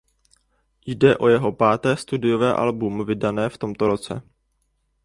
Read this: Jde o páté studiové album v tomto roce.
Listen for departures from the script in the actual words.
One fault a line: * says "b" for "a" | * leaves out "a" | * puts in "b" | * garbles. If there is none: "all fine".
* puts in "jeho"
* puts in "vydané"